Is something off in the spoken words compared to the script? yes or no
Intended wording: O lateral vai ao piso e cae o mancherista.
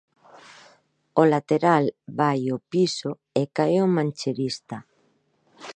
no